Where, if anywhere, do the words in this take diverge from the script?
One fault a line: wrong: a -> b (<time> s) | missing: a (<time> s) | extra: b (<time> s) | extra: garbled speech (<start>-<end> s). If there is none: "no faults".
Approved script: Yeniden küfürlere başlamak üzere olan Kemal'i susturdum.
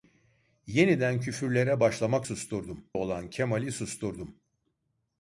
wrong: üzere -> susturdum (2.2 s)